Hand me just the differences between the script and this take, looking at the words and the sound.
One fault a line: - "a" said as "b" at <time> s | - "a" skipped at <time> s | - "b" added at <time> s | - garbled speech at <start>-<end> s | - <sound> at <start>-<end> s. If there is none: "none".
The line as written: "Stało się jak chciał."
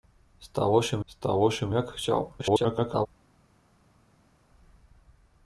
- "stało się" added at 1.1 s
- garbled speech at 2.4-3.1 s